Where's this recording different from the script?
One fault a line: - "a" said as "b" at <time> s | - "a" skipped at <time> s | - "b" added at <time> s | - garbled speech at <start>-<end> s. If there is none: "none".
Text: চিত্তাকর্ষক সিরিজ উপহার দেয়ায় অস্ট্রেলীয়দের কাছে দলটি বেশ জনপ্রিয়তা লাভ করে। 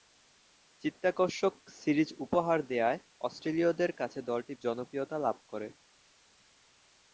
- "বেশ" skipped at 4.5 s